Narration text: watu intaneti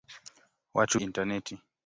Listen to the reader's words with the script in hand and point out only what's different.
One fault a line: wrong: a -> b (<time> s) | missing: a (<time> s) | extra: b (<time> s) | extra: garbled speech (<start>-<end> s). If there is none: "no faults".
no faults